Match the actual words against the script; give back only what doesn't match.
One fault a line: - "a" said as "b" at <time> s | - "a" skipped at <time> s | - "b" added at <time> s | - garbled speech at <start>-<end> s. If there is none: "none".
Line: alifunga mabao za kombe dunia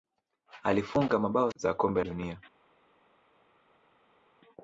none